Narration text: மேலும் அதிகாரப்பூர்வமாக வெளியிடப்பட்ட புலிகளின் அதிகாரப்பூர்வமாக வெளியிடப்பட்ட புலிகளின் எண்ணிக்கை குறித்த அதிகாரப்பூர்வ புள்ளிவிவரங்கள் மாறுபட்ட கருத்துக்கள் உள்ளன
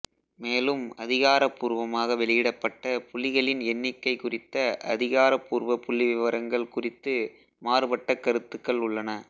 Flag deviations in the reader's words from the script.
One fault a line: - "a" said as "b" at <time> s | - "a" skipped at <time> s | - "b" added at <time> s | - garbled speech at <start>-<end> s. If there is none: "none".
- "அதிகாரப்பூர்வமாக வெளியிடப்பட்ட புலிகளின்" skipped at 3.6 s
- "குறித்து" added at 6.7 s